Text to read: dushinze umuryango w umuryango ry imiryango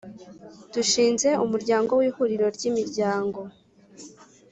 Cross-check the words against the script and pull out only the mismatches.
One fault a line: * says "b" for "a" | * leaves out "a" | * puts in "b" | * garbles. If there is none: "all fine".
* says "ihuriro" for "umuryango"